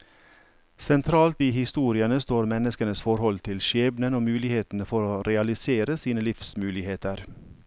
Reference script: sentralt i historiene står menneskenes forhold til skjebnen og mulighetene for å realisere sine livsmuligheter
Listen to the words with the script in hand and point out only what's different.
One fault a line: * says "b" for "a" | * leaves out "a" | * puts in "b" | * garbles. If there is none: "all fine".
all fine